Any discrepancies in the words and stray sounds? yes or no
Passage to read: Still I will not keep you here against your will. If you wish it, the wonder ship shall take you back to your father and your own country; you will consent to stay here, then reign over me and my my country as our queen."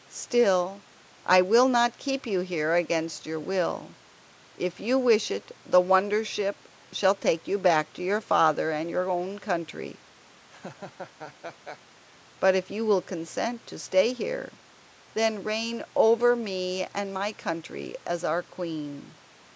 yes